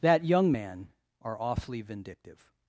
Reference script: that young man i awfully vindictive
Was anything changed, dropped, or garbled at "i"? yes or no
yes